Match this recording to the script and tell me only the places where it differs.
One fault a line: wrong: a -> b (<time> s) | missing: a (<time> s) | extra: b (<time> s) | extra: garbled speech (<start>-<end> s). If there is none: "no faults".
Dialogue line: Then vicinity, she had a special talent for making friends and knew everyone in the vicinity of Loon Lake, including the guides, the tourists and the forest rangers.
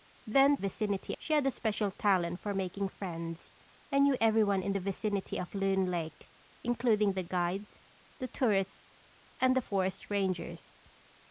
no faults